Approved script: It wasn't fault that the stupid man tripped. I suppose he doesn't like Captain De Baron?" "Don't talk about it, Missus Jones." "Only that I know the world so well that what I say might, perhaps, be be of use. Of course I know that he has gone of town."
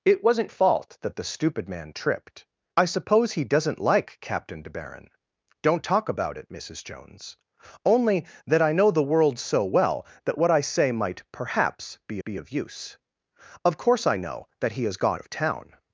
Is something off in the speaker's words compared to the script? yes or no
no